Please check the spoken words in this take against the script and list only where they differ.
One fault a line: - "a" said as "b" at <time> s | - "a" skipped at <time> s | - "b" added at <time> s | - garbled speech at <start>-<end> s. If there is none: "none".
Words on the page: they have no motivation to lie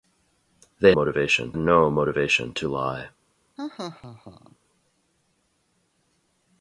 - "have" said as "motivation" at 0.9 s